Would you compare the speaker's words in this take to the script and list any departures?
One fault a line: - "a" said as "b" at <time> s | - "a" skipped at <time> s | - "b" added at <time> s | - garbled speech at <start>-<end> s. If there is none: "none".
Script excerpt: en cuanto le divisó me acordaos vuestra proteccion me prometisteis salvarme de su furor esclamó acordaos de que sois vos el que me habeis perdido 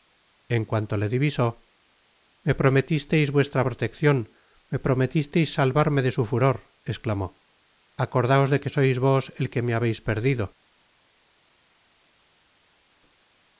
- "acordaos" said as "prometisteis" at 2.6 s